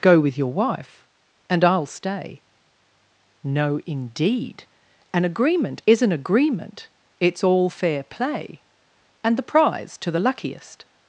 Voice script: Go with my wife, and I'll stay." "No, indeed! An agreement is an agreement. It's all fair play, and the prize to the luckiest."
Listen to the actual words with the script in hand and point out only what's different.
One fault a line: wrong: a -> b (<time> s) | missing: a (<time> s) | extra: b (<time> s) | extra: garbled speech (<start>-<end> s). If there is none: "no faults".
wrong: my -> your (0.4 s)